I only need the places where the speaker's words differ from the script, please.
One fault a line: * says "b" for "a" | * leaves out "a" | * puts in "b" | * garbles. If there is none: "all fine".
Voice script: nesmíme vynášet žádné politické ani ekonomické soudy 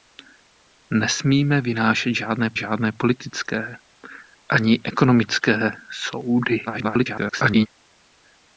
* puts in "žádné"
* garbles